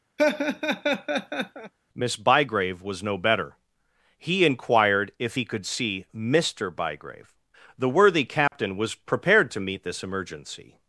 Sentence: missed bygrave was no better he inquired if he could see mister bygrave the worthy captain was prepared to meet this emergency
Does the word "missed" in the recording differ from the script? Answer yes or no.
yes